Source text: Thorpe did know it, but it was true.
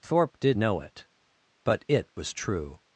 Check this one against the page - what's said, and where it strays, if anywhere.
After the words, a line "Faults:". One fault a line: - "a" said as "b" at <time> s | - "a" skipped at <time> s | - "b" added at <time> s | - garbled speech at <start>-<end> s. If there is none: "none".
Thorpe did know it, but it was true.
Faults:
none